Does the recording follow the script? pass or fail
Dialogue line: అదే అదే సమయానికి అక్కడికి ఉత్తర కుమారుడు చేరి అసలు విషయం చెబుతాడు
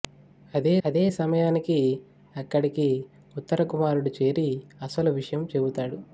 pass